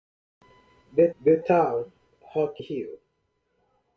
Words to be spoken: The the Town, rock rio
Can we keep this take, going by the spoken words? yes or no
yes